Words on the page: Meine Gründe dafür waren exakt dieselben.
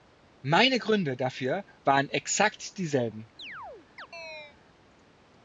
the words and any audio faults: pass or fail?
fail